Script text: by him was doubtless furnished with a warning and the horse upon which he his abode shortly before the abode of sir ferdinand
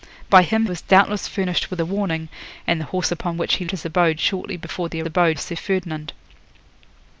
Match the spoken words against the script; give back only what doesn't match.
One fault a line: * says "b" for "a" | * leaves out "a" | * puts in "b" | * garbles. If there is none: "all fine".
all fine